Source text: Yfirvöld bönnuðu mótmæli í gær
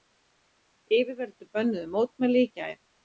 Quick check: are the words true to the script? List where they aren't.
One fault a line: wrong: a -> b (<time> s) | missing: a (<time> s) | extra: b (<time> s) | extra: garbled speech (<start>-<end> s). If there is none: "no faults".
no faults